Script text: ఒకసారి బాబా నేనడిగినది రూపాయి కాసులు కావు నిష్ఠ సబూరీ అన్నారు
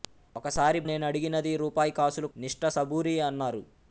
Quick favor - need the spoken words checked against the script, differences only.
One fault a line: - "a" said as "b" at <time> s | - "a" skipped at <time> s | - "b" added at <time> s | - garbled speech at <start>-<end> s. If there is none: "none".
- "బాబా" skipped at 0.8 s
- "కావు" skipped at 2.3 s